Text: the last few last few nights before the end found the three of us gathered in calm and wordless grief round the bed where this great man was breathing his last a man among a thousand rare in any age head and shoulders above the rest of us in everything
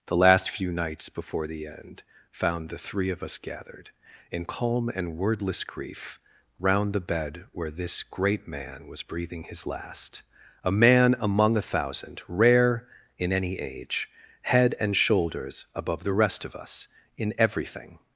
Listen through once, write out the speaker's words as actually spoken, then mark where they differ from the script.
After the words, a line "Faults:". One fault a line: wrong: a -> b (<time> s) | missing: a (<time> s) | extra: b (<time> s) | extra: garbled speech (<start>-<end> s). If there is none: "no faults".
the last few nights before the end found the three of us gathered in calm and wordless grief round the bed where this great man was breathing his last a man among a thousand rare in any age head and shoulders above the rest of us in everything
Faults:
missing: last few (0.7 s)